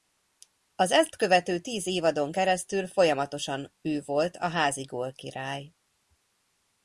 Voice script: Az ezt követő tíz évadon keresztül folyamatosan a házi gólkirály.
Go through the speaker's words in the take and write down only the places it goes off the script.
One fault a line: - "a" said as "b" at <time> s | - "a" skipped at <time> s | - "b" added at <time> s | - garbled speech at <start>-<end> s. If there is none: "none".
- "ő volt" added at 3.8 s